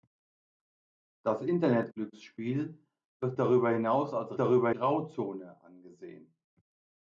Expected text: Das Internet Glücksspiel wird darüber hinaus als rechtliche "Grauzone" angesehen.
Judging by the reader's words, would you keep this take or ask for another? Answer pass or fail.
fail